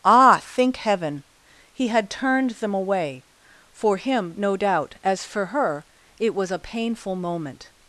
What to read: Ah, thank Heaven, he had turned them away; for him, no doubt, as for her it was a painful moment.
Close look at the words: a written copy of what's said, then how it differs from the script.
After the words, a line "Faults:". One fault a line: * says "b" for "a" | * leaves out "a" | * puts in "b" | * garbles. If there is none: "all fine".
Ah, think Heaven, he had turned them away; for him, no doubt, as for her it was a painful moment.
Faults:
* says "think" for "thank"